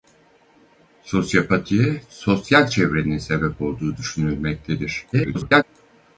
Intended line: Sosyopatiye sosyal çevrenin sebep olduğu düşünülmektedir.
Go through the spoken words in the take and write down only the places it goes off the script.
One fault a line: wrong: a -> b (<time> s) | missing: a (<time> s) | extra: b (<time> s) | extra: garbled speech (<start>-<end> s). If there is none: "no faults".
extra: garbled speech (5.1-5.6 s)